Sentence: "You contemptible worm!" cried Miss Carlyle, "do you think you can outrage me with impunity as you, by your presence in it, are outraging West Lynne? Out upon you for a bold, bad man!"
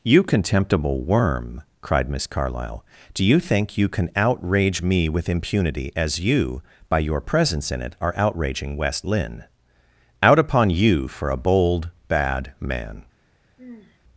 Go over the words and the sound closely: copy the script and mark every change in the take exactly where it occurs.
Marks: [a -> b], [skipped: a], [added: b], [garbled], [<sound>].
"You contemptible worm!" cried Miss Carlyle, "do you think you can outrage me with impunity as you, by your presence in it, are outraging West Lynne? Out upon you for a bold, bad man!" [sigh]